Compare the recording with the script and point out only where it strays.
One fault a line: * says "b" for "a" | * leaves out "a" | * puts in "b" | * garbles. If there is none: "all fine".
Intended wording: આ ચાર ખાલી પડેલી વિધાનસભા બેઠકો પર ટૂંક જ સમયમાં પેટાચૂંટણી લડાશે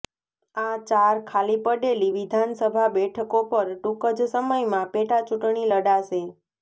all fine